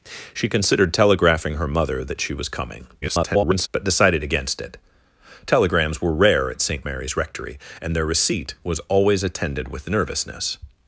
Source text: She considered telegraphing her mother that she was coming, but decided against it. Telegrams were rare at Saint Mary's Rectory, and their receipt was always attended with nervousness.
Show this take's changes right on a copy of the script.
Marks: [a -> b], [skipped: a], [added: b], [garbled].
She considered telegraphing her mother that she was coming, [garbled] but decided against it. Telegrams were rare at Saint Mary's Rectory, and their receipt was always attended with nervousness.